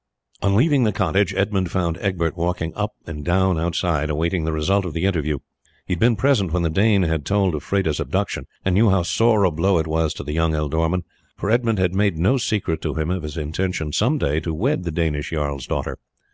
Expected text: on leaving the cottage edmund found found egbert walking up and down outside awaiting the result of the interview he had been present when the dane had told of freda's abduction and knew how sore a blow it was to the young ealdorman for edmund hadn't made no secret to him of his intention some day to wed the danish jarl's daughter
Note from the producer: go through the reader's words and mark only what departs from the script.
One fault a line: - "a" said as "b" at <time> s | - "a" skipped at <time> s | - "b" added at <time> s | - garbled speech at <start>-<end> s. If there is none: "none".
- "found" skipped at 2.0 s
- "hadn't" said as "had" at 11.8 s